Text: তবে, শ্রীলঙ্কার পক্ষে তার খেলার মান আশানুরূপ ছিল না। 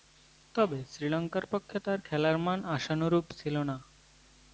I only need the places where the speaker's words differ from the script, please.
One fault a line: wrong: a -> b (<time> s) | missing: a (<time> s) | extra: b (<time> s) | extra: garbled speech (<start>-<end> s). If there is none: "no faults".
no faults